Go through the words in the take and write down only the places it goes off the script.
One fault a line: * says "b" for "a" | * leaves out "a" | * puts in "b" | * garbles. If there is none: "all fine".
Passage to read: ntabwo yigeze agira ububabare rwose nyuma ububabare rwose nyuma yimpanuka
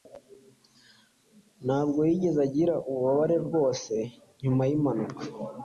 * leaves out "ububabare rwose nyuma"